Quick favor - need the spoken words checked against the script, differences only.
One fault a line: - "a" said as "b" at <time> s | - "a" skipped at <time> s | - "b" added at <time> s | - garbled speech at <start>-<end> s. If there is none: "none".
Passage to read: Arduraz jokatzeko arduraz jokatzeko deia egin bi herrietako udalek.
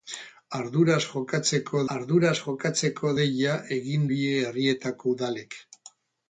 none